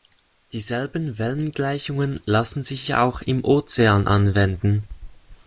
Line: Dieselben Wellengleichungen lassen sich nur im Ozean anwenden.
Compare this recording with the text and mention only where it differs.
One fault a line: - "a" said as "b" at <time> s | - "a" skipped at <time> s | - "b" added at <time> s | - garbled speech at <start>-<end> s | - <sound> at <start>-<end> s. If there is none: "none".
- "nur" said as "auch" at 3.0 s